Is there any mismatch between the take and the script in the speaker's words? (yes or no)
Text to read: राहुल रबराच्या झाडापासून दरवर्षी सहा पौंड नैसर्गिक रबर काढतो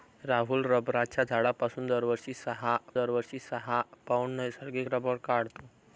yes